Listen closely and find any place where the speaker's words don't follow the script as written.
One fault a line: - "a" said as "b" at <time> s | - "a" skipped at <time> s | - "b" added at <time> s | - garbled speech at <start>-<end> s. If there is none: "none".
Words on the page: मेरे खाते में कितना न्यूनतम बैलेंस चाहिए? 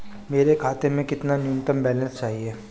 none